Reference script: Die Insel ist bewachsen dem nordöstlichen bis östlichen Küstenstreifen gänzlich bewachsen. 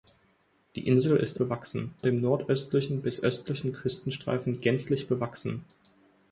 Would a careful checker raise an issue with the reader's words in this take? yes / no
no